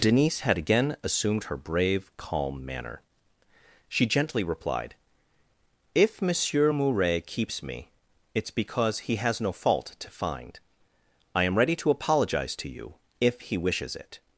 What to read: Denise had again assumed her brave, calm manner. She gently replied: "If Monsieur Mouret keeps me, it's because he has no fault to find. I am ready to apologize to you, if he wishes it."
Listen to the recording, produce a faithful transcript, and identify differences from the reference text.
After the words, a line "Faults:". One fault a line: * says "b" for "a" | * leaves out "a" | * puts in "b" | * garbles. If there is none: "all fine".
Denise had again assumed her brave, calm manner. She gently replied: "If Monsieur Mouret keeps me, it's because he has no fault to find. I am ready to apologize to you, if he wishes it."
Faults:
all fine